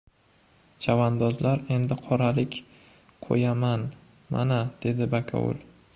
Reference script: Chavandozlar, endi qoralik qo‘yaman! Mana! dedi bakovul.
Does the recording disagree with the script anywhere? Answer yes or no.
no